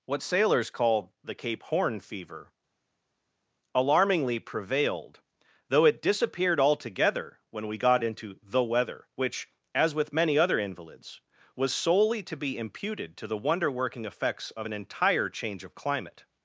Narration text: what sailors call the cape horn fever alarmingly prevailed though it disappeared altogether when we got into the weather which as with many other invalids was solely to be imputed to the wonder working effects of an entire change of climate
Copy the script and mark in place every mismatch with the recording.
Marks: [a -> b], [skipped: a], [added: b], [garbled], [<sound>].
what sailors call the cape horn fever alarmingly prevailed though it disappeared altogether when we got into the weather which as with many other invalids was solely to be imputed to the wonder working effects of an entire change of climate